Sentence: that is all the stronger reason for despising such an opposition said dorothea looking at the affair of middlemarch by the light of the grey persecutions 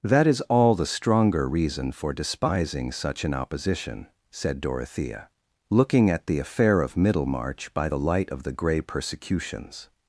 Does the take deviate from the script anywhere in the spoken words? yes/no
no